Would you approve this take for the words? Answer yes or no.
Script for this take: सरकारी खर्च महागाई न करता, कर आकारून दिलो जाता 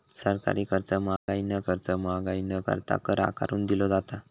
no